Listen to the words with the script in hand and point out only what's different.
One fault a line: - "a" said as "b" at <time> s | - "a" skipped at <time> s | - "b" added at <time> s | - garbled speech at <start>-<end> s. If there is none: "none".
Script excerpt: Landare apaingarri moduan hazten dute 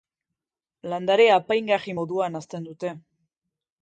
none